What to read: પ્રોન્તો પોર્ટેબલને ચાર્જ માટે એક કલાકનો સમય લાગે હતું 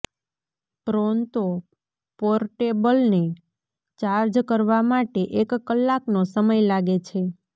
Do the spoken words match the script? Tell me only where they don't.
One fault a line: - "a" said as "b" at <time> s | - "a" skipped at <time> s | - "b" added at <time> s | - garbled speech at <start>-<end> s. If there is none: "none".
- "કરવા" added at 4.5 s
- "હતું" said as "છે" at 7.0 s